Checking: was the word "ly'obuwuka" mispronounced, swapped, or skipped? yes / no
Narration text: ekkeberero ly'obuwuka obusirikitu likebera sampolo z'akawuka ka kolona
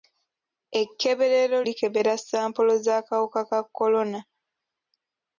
yes